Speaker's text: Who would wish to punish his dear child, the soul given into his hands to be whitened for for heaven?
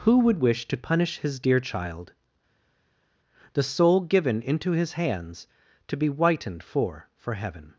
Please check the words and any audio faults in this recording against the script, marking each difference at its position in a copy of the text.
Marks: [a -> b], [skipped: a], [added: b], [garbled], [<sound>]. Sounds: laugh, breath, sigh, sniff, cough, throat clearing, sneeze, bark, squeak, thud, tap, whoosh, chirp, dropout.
Who would wish to punish his dear child, the soul given into his hands to be whitened for for heaven?